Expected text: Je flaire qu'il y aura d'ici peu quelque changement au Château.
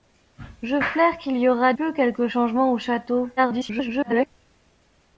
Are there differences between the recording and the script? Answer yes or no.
yes